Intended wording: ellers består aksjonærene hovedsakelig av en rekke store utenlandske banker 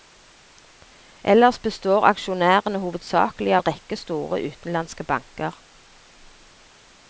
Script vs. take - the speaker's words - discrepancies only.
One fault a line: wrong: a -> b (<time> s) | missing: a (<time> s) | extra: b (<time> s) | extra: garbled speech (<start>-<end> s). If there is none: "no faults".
missing: av (3.5 s)